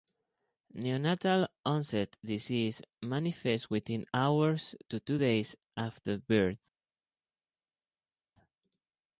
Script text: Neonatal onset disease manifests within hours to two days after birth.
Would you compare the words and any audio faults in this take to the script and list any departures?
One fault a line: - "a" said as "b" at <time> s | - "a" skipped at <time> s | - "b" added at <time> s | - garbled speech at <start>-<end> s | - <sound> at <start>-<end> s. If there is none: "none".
none